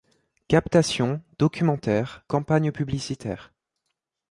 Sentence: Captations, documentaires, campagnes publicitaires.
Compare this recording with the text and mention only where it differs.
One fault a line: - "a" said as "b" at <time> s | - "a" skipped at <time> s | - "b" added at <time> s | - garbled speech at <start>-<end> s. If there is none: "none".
none